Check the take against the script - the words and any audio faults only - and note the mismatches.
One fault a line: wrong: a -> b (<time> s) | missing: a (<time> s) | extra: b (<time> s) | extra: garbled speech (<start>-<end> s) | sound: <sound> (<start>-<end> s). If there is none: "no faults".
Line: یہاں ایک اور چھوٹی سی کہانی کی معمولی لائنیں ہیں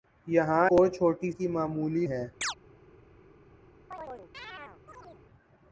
missing: ایک (0.7 s)
missing: سی کہانی (1.3 s)
missing: لائنیں (2.1 s)
sound: chirp (2.4-2.5 s)
sound: chirp (3.9-5.2 s)